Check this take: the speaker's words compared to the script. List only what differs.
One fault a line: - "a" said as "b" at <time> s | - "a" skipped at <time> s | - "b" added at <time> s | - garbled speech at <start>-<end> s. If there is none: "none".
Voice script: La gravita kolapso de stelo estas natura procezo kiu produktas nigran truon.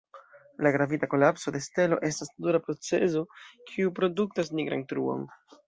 none